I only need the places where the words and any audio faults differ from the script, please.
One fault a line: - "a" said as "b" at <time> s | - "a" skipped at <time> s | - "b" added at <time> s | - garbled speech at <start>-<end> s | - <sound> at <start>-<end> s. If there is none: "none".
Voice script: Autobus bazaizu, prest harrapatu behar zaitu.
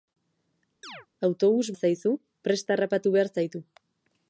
- chirp at 0.8-1.1 s